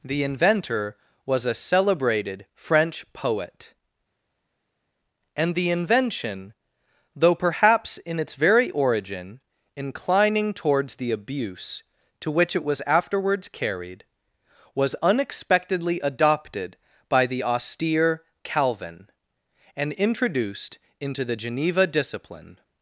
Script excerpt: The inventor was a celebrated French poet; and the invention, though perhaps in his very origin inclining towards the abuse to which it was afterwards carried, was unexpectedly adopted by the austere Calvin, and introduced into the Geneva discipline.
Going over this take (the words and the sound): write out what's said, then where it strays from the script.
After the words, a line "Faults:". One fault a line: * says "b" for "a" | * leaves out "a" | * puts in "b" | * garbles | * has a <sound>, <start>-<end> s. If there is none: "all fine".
The inventor was a celebrated French poet; and the invention, though perhaps in its very origin inclining towards the abuse to which it was afterwards carried, was unexpectedly adopted by the austere Calvin, and introduced into the Geneva discipline.
Faults:
* says "its" for "his"